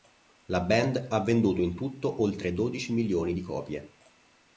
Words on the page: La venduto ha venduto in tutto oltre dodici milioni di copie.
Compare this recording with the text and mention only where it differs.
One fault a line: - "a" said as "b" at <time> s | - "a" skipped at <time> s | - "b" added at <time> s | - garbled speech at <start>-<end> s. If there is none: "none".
- "venduto" said as "band" at 0.6 s